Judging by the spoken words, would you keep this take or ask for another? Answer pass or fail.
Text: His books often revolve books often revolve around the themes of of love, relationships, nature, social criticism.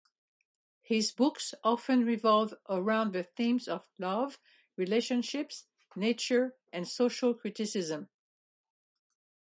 fail